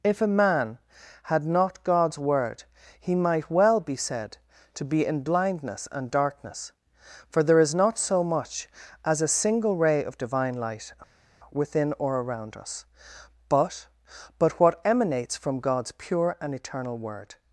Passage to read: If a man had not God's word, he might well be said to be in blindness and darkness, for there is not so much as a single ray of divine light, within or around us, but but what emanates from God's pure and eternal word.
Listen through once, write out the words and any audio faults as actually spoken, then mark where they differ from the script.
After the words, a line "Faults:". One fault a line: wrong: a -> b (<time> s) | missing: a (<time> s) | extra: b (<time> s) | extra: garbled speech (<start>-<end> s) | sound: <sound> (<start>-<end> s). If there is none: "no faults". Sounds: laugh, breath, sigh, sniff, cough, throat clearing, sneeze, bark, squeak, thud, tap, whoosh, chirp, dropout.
If a man had not God's word, he might well be said to be in blindness and darkness, for there is not so much as a single ray of divine light, within or around us, but but what emanates from God's pure and eternal word.
Faults:
no faults